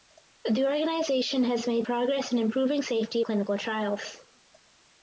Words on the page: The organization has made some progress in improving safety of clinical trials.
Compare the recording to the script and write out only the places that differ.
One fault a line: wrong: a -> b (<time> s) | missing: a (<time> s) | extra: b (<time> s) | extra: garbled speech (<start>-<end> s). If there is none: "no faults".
missing: some (1.9 s)
missing: of (3.2 s)